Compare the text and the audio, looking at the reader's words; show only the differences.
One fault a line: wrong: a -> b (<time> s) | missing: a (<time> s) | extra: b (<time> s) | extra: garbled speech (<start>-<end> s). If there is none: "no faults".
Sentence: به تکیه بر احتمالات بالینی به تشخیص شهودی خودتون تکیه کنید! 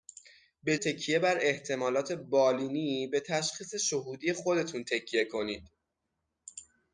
no faults